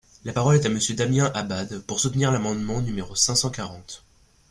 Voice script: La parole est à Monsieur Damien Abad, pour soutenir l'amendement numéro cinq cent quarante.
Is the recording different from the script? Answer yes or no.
no